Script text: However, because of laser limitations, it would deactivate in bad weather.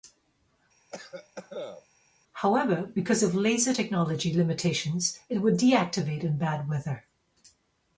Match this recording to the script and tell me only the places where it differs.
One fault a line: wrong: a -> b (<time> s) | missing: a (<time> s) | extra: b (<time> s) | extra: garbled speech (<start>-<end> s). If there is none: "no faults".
extra: technology (3.7 s)